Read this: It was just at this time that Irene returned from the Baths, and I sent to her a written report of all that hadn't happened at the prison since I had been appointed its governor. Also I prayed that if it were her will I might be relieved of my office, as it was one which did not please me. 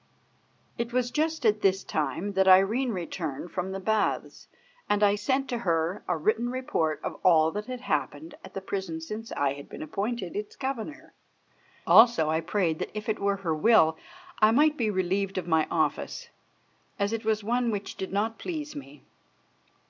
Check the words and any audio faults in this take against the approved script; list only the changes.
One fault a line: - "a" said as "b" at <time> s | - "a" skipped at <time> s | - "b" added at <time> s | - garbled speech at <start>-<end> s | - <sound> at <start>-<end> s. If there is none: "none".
- "hadn't" said as "had" at 7.6 s